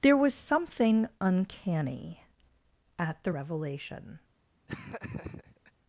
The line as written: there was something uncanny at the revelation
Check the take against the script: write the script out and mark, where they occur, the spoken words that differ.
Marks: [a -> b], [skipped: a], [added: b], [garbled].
there was something uncanny at the revelation